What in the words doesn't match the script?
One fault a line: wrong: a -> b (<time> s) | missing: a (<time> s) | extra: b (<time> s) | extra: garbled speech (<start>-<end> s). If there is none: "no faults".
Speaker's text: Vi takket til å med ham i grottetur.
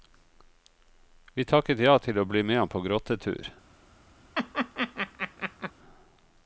extra: ja (1.8 s)
extra: bli (2.2 s)
wrong: i -> på (2.7 s)